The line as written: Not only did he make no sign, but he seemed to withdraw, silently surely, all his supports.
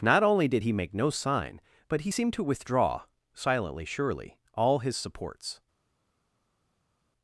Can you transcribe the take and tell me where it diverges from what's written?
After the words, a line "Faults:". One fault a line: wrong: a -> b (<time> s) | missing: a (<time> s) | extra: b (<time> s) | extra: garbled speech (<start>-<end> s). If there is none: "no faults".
Not only did he make no sign, but he seemed to withdraw, silently surely, all his supports.
Faults:
no faults